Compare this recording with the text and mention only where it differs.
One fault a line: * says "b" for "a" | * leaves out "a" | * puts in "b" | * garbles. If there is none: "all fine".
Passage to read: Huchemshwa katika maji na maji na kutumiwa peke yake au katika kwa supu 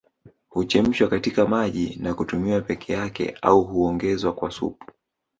* leaves out "maji na"
* says "huongezwa" for "katika"